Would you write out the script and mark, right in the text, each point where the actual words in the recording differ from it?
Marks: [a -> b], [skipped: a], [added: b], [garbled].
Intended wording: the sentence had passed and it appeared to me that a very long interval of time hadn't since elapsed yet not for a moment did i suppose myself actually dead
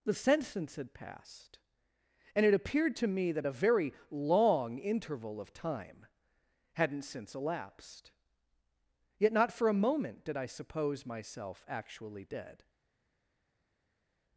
the sentence had passed and it appeared to me that a very long interval of time hadn't since elapsed yet not for a moment did i suppose myself actually dead